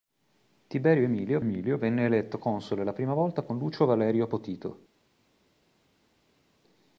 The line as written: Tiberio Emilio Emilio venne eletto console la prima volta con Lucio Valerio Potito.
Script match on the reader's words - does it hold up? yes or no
yes